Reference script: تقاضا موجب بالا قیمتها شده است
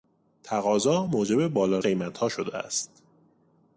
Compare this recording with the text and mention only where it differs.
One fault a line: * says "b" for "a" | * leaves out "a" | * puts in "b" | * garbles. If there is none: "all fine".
all fine